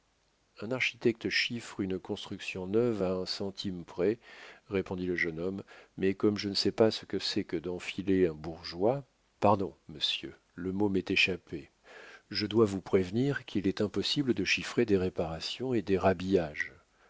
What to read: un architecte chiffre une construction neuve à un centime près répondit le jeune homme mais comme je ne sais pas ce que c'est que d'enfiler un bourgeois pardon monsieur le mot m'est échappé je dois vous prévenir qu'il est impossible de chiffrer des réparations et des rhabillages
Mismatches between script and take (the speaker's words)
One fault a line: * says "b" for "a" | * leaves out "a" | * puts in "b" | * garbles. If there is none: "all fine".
all fine